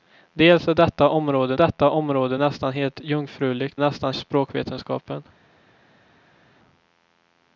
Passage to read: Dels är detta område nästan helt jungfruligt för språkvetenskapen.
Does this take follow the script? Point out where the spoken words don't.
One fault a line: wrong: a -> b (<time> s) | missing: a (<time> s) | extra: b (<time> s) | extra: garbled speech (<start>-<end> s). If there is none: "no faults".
extra: detta område (1.5 s)
wrong: för -> nästan (3.8 s)